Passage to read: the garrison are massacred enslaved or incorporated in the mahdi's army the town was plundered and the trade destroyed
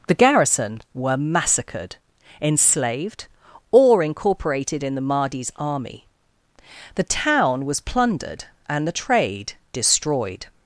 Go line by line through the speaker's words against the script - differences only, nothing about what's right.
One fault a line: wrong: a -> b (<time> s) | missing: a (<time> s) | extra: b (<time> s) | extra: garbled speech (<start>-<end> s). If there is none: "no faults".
wrong: are -> were (0.9 s)